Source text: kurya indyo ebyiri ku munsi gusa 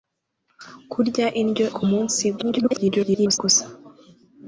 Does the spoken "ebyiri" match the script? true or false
false